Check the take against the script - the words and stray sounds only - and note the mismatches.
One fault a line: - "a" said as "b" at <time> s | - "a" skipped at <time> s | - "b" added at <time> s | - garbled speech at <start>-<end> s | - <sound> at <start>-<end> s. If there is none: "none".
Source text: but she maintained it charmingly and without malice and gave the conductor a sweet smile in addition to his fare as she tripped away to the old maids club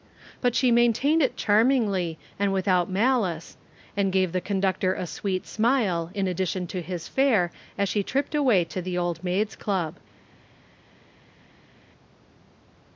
none